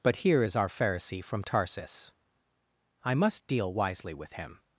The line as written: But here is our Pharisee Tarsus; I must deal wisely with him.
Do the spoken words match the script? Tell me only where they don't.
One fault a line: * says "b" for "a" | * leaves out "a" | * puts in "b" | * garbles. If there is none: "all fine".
* puts in "from"